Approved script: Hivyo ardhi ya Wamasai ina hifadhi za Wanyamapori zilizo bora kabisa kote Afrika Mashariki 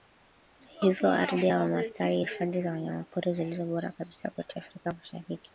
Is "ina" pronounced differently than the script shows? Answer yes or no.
yes